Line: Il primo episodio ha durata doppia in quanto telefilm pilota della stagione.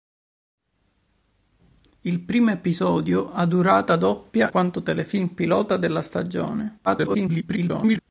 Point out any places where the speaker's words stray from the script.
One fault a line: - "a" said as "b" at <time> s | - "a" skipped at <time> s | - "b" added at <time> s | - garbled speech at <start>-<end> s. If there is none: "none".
- "in" skipped at 4.5 s
- garbled speech at 6.9-8.0 s